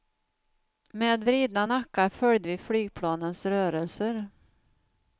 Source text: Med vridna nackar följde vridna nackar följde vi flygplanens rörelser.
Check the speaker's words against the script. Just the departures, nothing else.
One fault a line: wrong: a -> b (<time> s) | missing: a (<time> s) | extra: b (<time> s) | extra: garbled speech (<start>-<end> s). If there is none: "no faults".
missing: vridna nackar följde (2.5 s)